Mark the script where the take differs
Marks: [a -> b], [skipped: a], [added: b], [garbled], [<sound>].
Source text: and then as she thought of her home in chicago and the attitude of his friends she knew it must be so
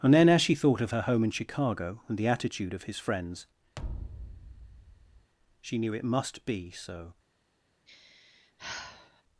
and then as she thought of her home in chicago and the attitude of his friends [thud] she knew it must be so [sigh]